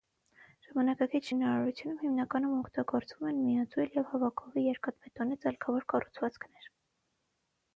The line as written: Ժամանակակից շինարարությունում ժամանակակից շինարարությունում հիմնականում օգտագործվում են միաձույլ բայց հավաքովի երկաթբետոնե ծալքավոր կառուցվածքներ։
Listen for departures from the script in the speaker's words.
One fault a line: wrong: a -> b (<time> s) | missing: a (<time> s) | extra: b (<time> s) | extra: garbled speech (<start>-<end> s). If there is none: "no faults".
missing: ժամանակակից շինարարությունում (2.0 s)
wrong: բայց -> և (4.0 s)